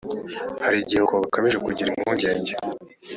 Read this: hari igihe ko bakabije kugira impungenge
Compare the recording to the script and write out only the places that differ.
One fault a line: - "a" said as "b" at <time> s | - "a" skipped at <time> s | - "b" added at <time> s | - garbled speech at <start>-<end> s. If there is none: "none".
none